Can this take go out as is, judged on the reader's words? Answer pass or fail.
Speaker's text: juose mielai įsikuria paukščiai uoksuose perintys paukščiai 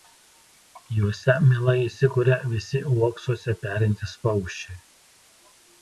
fail